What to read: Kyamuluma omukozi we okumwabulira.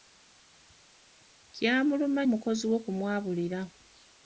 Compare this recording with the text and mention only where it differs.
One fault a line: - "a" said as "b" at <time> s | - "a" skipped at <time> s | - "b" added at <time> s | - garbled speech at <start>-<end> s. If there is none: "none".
none